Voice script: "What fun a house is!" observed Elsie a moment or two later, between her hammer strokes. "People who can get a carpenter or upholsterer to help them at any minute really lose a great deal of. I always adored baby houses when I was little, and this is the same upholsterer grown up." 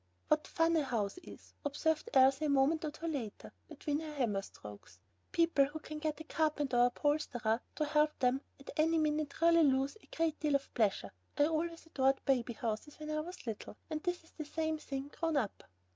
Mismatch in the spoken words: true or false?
true